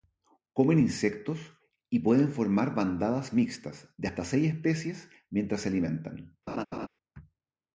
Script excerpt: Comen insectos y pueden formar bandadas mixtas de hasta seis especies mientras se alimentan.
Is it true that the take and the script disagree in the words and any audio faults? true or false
true